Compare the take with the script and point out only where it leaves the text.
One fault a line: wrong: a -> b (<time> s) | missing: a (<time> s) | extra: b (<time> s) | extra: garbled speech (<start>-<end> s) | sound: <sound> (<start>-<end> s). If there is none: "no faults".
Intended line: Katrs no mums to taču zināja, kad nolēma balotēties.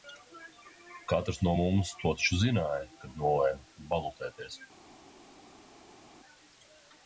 no faults